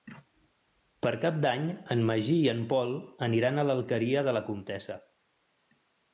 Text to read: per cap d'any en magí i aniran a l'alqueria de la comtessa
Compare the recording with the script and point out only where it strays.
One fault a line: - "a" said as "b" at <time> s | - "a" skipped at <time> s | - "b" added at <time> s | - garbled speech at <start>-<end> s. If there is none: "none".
- "en pol" added at 2.5 s